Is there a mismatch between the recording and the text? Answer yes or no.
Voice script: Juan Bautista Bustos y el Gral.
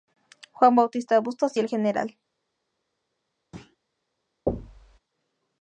no